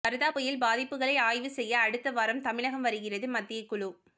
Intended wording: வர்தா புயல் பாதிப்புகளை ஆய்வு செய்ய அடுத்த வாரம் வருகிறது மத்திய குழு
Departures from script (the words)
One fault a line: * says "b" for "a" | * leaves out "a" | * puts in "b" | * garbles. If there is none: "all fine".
* puts in "தமிழகம்"